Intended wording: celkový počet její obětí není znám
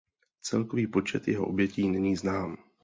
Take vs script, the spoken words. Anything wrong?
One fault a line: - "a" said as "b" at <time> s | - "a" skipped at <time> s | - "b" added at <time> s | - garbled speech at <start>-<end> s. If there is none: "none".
- "její" said as "jeho" at 1.3 s